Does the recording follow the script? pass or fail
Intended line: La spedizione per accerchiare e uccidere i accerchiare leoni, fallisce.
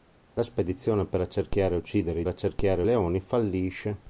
pass